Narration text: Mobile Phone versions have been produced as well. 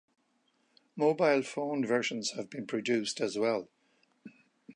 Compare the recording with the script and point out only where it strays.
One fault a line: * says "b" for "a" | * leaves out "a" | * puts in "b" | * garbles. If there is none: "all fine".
all fine